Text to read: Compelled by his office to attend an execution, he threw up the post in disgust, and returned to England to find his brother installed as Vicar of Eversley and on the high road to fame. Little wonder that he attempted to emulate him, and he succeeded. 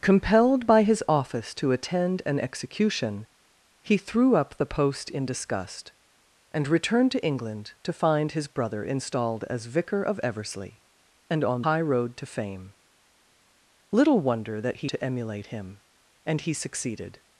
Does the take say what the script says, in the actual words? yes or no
no